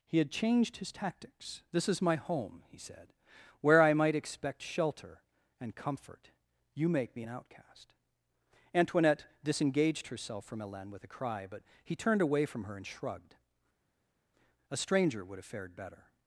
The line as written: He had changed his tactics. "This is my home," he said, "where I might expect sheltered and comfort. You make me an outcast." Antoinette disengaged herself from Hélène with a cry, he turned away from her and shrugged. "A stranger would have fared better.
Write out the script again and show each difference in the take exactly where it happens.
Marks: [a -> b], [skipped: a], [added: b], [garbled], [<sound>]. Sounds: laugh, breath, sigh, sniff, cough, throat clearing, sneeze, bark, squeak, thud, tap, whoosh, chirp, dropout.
He had changed his tactics. "This is my home," he said, "where I might expect [sheltered -> shelter] and comfort. You make me an outcast." Antoinette disengaged herself from Hélène with a cry, [added: but] he turned away from her and shrugged. "A stranger would have fared better.